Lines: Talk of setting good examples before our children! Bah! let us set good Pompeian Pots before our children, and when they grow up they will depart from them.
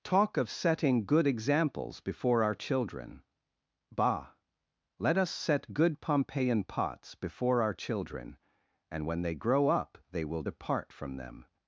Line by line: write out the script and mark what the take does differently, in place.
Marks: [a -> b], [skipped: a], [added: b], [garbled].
Talk of setting good examples before our children! Bah! let us set good Pompeian Pots before our children, and when they grow up they will depart from them.